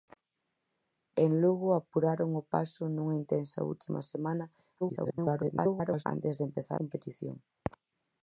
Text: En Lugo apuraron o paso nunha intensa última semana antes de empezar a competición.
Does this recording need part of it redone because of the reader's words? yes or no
yes